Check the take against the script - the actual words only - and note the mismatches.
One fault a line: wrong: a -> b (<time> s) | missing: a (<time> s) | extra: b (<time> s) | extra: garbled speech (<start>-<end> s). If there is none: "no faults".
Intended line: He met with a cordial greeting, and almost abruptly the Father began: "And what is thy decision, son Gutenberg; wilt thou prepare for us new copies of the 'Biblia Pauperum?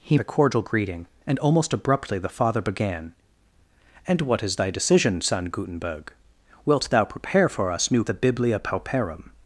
missing: met with (0.2 s)
missing: copies of (8.0 s)